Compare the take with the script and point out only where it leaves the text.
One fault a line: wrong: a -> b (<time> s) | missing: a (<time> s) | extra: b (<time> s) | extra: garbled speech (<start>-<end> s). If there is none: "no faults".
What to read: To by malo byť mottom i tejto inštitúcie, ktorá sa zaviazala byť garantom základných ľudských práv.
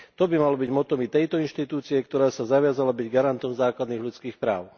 no faults